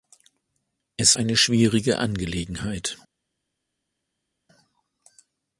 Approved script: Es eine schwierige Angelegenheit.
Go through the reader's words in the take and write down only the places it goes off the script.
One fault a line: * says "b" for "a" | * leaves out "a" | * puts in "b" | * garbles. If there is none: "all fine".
all fine